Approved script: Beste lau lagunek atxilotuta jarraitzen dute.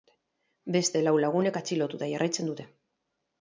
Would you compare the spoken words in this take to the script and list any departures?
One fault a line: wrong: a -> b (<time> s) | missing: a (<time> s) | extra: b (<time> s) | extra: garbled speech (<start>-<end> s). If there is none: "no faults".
no faults